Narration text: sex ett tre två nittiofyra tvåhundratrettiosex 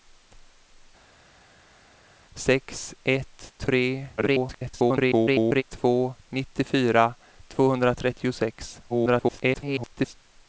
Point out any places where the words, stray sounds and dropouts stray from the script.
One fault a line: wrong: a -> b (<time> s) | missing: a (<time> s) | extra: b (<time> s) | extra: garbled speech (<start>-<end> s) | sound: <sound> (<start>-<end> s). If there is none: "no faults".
extra: garbled speech (4.2-5.6 s)
extra: garbled speech (8.9-10.1 s)